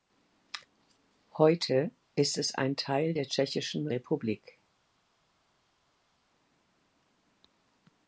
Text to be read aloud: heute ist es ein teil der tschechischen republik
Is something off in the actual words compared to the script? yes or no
no